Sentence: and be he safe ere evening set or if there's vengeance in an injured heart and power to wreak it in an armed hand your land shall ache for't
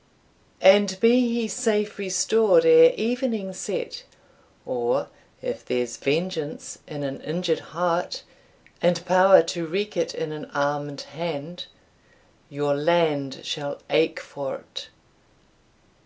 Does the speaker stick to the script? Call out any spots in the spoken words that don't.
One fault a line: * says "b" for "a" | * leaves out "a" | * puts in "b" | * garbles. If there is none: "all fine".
* puts in "restored"